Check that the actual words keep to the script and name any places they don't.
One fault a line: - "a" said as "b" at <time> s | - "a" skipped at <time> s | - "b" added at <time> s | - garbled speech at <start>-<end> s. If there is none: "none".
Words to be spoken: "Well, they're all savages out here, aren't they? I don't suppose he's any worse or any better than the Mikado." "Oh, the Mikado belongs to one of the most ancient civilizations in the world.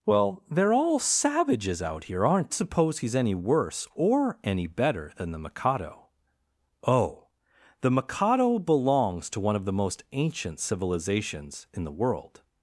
- "they I don't" skipped at 2.5 s